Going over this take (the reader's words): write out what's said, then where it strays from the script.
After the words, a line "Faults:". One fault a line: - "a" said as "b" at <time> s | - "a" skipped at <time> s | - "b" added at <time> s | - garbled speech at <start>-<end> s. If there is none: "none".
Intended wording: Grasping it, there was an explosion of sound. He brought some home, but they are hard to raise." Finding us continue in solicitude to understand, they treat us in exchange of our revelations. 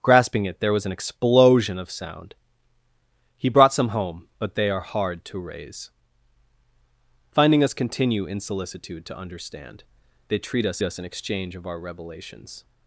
Grasping it, there was an explosion of sound. He brought some home, but they are hard to raise." Finding us continue in solicitude to understand, they treat us us in exchange of our revelations.
Faults:
- "us" added at 10.8 s